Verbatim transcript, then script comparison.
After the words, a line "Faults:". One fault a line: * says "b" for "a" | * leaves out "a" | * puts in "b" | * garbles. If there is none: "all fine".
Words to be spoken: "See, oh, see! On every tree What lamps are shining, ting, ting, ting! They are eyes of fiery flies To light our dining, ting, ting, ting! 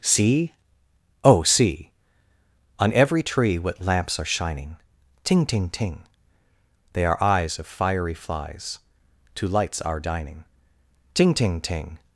"See, oh, see! On every tree What lamps are shining, ting, ting, ting! They are eyes of fiery flies To lights our dining, ting, ting, ting!
Faults:
* says "lights" for "light"